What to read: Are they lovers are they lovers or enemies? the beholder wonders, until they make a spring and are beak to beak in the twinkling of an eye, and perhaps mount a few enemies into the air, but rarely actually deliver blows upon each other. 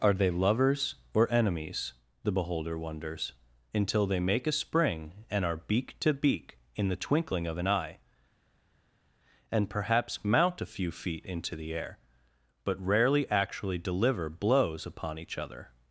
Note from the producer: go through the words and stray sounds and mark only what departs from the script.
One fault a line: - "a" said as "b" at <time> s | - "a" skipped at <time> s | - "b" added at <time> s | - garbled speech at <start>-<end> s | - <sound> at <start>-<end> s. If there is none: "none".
- "are they lovers" skipped at 0.9 s
- "enemies" said as "feet" at 10.9 s